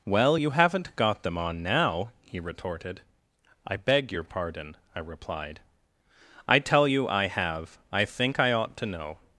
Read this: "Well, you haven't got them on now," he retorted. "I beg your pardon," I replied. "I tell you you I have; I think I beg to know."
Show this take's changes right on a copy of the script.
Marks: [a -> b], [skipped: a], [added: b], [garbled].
"Well, you haven't got them on now," he retorted. "I beg your pardon," I replied. "I tell you [skipped: you] I have; I think I [beg -> ought] to know."